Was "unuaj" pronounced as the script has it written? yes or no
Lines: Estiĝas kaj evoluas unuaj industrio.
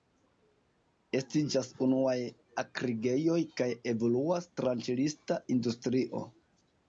no